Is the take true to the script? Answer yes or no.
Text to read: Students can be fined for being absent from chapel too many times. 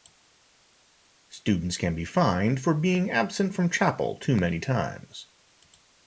yes